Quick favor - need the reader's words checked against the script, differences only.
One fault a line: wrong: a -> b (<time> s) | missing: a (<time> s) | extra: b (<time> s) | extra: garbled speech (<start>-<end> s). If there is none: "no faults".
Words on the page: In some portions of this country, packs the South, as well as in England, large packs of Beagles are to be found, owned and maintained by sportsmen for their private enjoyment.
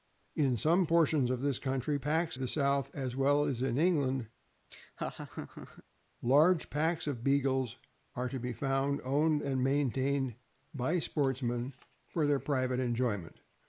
no faults